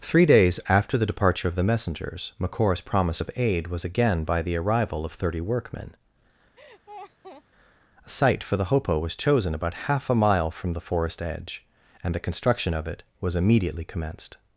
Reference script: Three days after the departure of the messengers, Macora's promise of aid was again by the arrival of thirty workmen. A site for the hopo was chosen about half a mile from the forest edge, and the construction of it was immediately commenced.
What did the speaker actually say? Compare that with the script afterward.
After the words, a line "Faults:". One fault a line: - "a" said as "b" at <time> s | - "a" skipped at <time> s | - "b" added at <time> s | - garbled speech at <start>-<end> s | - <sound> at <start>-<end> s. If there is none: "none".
Three days after the departure of the messengers, Macora's promise of aid was again by the arrival of thirty workmen. A site for the hopo was chosen about half a mile from the forest edge, and the construction of it was immediately commenced.
Faults:
- laugh at 6.6-7.4 s